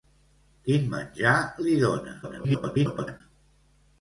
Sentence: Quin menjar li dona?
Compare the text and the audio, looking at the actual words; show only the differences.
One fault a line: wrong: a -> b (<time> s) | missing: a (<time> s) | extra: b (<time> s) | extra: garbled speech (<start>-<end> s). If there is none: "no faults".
extra: garbled speech (2.2-3.2 s)